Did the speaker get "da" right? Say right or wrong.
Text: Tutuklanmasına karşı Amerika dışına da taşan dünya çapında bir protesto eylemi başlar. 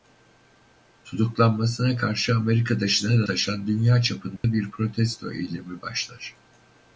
wrong